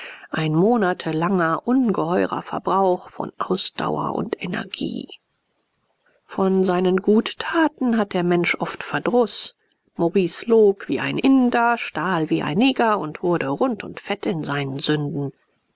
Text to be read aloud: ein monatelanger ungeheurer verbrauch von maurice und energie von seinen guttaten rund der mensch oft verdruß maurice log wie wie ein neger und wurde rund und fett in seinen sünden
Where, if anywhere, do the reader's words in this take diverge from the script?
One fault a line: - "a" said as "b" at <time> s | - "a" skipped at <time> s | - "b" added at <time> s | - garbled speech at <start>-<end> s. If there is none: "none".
- "maurice" said as "ausdauer" at 3.4 s
- "rund" said as "hat" at 8.0 s
- "ein inder stahl" added at 11.0 s